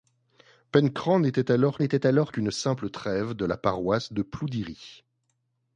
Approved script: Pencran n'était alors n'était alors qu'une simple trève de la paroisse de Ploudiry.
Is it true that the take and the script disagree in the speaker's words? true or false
false